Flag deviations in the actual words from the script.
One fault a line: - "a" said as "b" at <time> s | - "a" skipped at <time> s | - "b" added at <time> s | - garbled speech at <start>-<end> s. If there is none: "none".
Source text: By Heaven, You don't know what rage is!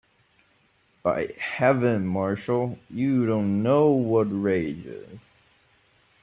- "Marshall" added at 2.1 s